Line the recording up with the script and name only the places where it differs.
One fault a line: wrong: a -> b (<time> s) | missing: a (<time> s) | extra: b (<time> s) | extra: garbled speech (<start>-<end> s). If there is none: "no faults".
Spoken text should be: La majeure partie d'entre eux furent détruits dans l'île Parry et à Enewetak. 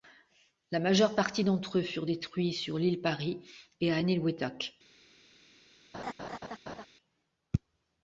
wrong: dans -> sur (2.5 s)